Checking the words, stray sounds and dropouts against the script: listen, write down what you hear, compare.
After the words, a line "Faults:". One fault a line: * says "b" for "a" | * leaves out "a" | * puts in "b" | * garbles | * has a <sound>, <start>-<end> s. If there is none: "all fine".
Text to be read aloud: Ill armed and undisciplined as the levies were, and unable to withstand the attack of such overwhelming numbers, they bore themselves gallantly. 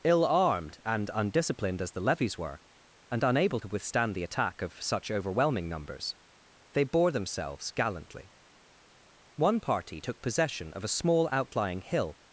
Ill armed and undisciplined as the levies were, and unable to withstand the attack of such overwhelming numbers, they bore themselves gallantly. One party took possession of a small outlying hill
Faults:
* puts in "One party took possession of a small outlying hill"